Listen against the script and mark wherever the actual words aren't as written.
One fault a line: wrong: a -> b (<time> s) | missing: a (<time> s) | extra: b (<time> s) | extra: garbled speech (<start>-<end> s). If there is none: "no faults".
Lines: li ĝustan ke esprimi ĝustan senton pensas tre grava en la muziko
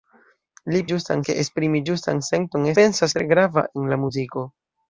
no faults